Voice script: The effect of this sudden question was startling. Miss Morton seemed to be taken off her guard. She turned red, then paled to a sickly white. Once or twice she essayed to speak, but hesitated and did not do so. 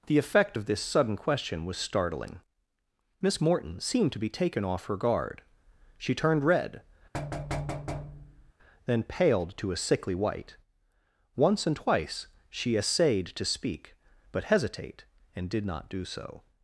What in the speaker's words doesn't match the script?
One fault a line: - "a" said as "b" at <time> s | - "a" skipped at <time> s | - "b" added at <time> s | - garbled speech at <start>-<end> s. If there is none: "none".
- "or" said as "and" at 11.7 s
- "hesitated" said as "hesitate" at 14.4 s